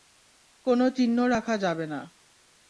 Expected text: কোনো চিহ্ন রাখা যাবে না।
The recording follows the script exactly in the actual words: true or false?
true